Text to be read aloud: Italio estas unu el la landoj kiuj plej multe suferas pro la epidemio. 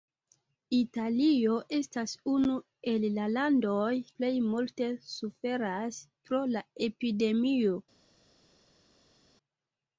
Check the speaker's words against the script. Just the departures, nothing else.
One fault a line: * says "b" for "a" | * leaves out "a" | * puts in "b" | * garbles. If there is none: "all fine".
* leaves out "kiuj"